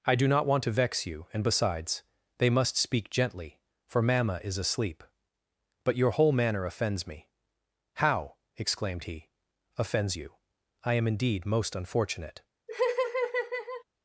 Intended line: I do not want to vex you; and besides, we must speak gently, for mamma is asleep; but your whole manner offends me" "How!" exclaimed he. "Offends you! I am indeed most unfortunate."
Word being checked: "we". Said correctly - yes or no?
no